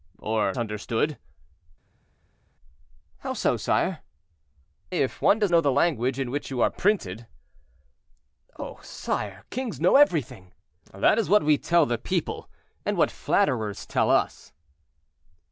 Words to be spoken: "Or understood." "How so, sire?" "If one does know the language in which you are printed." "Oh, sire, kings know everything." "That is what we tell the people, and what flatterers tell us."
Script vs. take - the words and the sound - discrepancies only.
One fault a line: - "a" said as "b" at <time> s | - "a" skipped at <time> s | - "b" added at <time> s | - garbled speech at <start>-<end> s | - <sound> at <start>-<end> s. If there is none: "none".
none